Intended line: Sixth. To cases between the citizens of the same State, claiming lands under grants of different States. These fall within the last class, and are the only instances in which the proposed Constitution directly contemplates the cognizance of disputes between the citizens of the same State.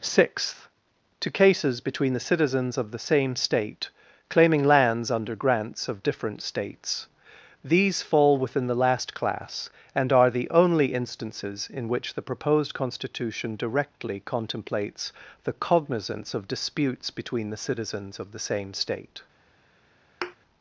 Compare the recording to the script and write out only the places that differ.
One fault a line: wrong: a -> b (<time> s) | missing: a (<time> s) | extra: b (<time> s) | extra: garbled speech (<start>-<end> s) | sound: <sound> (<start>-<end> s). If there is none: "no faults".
sound: thud (20.2-20.4 s)